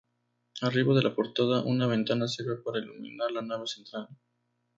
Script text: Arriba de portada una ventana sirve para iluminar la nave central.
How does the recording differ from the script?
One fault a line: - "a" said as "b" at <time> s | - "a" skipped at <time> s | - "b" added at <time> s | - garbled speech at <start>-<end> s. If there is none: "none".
- "la" added at 1.0 s